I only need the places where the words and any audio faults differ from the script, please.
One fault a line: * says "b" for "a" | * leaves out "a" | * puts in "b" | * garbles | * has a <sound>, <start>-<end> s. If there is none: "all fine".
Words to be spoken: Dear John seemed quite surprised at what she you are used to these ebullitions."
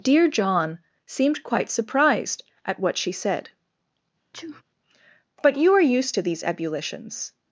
* puts in "said but"
* has a sneeze, 4.3-4.6 s